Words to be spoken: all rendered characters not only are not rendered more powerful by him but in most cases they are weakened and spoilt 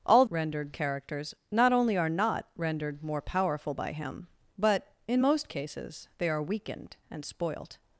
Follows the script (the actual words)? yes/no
yes